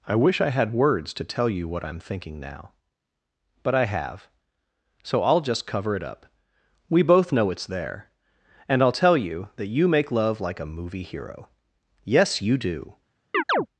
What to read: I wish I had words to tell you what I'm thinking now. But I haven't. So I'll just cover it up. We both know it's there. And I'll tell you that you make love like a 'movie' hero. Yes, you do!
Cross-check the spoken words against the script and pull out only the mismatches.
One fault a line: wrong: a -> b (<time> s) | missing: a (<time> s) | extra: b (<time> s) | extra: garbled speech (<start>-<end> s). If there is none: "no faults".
wrong: haven't -> have (3.9 s)